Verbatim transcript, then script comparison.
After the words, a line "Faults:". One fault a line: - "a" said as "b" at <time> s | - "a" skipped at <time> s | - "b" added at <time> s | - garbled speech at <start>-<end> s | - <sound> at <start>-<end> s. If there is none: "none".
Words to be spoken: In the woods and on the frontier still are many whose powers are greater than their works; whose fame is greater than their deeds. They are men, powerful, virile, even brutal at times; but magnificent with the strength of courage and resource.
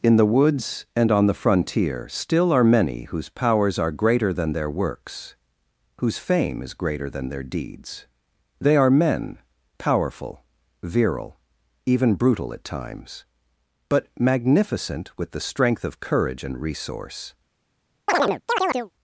In the woods and on the frontier still are many whose powers are greater than their works; whose fame is greater than their deeds. They are men, powerful, virile, even brutal at times; but magnificent with the strength of courage and resource.
Faults:
- chirp at 18.1-18.9 s